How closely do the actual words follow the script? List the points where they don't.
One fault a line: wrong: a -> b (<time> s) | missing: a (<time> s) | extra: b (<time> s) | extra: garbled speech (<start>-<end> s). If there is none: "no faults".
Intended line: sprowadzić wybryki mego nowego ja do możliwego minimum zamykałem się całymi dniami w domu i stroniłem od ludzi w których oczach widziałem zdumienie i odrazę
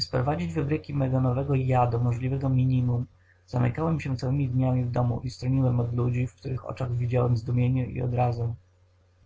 no faults